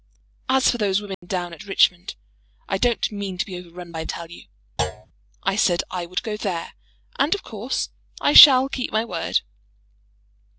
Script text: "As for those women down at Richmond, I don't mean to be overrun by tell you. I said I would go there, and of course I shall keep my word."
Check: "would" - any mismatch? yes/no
no